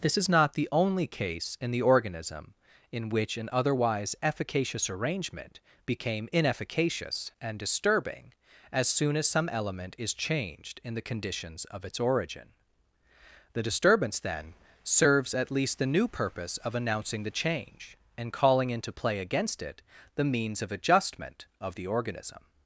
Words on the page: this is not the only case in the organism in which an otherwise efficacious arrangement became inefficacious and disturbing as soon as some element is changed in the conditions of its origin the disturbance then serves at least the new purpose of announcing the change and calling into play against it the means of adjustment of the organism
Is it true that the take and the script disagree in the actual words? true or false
false